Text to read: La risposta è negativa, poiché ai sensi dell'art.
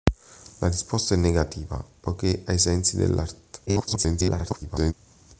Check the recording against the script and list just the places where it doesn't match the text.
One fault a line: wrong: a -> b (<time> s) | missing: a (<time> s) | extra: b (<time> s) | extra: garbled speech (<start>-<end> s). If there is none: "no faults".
extra: garbled speech (3.7-4.9 s)